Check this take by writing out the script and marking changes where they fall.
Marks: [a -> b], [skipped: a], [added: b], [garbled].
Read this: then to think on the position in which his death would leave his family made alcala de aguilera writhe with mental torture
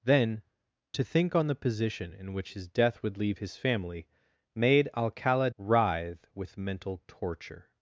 then to think on the position in which his death would leave his family made alcala [skipped: de aguilera] writhe with mental torture